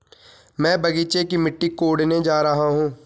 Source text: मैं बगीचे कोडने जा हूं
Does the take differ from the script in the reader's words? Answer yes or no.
yes